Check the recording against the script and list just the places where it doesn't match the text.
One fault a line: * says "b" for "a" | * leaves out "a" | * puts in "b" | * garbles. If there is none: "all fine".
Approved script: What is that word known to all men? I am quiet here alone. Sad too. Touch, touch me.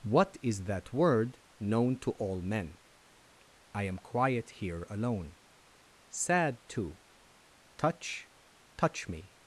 all fine